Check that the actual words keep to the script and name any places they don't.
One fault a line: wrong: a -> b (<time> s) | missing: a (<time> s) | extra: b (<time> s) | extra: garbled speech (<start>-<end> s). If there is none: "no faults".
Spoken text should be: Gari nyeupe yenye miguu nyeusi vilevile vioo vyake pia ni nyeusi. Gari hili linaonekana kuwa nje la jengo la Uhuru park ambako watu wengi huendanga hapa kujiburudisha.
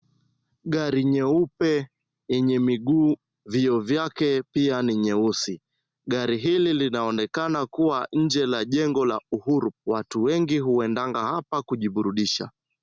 missing: nyeusi vilevile (3.1 s)
missing: park ambako (9.7 s)